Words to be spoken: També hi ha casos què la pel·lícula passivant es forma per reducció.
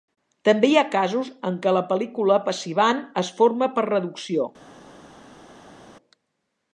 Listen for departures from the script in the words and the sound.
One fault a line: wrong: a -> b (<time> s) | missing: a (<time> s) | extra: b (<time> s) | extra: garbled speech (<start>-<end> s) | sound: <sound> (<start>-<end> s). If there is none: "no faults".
extra: en (1.5 s)